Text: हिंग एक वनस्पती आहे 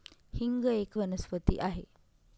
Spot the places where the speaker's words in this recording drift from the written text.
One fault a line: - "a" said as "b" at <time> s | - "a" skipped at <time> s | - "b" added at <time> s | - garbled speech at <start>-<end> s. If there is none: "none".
none